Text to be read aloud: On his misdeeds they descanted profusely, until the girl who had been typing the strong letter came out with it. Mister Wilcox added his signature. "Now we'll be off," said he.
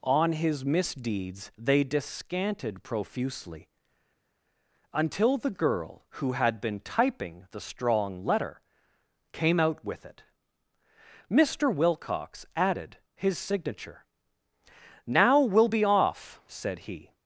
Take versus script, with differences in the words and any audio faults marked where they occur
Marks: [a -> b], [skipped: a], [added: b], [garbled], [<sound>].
On his misdeeds they descanted profusely, until the girl who had been typing the strong letter came out with it. Mister Wilcox added his signature. "Now we'll be off," said he.